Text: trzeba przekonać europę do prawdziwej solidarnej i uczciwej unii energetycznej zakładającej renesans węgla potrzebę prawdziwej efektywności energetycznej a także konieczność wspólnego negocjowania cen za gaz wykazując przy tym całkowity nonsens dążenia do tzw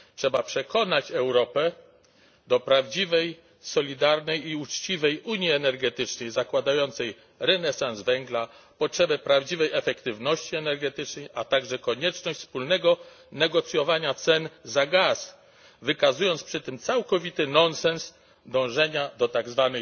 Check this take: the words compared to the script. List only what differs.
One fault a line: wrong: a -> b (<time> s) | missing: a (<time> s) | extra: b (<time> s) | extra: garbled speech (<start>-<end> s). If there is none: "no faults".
no faults